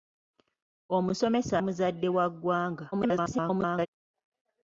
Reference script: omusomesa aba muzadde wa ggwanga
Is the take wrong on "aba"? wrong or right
wrong